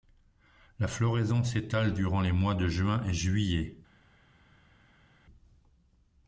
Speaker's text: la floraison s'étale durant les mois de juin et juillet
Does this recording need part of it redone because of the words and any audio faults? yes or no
no